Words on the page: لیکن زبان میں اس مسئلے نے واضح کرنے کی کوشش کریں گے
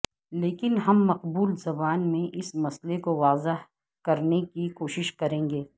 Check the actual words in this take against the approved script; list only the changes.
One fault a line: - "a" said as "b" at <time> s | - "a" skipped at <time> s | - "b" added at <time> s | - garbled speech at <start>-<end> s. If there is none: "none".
- "ہم مقبول" added at 0.9 s
- "نے" said as "کو" at 3.0 s